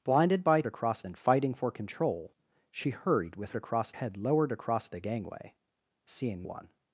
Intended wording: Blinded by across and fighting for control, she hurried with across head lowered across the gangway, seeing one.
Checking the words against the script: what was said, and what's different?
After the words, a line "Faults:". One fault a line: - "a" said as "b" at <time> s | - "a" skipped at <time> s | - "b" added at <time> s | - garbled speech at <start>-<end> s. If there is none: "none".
Blinded by across and fighting for control, she hurried with across head lowered across the gangway, seeing one.
Faults:
none